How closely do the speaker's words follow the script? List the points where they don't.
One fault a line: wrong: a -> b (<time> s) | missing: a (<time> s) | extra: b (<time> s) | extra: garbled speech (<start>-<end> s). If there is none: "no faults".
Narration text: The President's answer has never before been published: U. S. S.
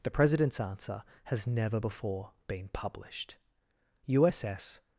no faults